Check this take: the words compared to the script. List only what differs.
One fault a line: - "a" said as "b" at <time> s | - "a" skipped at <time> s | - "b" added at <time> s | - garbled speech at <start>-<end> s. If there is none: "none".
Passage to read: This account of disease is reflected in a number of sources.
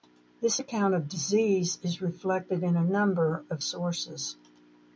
none